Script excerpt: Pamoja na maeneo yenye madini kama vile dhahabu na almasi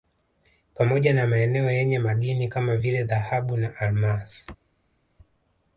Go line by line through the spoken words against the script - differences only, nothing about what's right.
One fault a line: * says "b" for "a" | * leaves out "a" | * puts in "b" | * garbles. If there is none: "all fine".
all fine